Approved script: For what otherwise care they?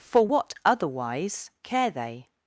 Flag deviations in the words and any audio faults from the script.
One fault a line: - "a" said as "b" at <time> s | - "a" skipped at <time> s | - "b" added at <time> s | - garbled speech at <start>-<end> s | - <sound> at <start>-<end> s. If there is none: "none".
none